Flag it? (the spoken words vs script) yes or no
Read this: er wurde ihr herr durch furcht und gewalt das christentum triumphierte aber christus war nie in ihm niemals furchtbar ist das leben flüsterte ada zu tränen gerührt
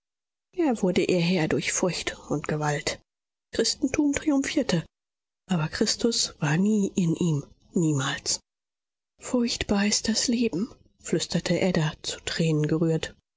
yes